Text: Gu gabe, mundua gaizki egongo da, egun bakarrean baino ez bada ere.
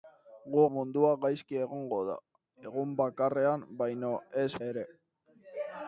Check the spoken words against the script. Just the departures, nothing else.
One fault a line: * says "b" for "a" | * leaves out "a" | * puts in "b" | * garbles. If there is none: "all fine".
* leaves out "gabe"
* leaves out "bada"